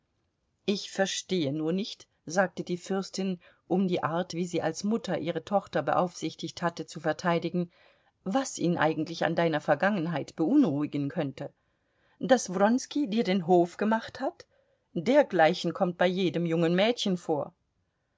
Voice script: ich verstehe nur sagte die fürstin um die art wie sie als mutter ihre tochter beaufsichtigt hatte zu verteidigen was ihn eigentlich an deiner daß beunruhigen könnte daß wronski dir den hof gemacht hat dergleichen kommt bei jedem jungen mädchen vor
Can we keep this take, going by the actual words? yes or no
no